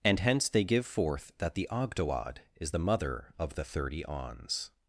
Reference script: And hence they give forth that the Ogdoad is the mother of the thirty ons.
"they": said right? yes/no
yes